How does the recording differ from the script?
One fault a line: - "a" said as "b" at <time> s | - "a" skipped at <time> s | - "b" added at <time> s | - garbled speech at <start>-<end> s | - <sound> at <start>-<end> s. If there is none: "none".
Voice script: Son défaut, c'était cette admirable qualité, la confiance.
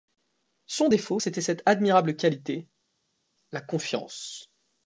none